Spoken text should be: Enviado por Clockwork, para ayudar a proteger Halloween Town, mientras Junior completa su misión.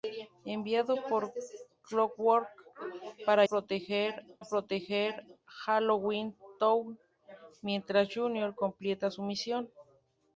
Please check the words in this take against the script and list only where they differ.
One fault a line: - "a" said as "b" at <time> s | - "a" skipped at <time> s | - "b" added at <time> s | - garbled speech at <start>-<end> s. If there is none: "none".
- "ayudar" said as "proteger" at 3.4 s